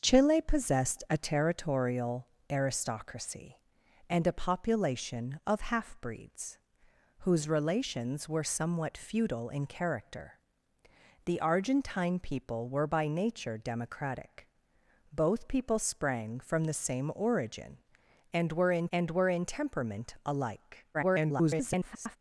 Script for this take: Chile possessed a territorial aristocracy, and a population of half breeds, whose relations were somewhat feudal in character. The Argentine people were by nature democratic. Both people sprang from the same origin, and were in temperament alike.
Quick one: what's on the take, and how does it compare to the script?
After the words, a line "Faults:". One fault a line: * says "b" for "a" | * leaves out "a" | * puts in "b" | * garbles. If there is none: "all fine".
Chile possessed a territorial aristocracy, and a population of half breeds, whose relations were somewhat feudal in character. The Argentine people were by nature democratic. Both people sprang from the same origin, and were in and were in temperament alike. [garbled]
Faults:
* puts in "and were in"
* garbles